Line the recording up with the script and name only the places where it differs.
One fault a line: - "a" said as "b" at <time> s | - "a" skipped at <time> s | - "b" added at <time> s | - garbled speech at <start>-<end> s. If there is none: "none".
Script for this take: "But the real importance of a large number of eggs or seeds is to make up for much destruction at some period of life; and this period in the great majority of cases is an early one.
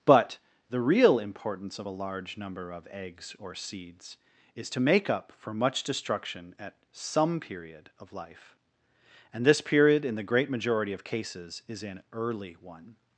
none